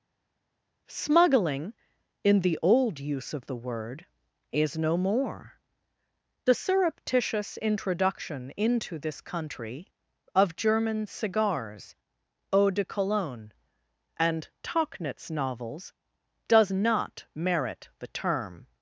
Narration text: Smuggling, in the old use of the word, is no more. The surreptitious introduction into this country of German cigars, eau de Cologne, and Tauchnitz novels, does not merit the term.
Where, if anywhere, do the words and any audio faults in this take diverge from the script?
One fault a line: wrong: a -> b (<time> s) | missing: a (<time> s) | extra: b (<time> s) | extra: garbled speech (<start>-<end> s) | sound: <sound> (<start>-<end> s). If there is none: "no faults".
no faults